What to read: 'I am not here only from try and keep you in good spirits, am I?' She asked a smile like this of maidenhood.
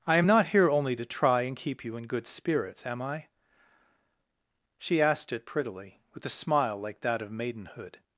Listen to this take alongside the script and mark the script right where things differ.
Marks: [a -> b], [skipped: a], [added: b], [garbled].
'I am not here only [from -> to] try and keep you in good spirits, am I?' She asked [added: it prettily with] a smile like [this -> that] of maidenhood.